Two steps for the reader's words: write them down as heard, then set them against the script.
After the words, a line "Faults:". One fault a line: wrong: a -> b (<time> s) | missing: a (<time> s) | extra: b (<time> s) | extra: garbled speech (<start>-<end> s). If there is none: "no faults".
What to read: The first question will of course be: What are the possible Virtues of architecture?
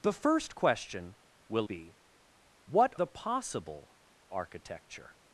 The first question will be: What the possible Architecture?
Faults:
missing: of course (1.7 s)
missing: are (2.9 s)
missing: Virtues of (4.0 s)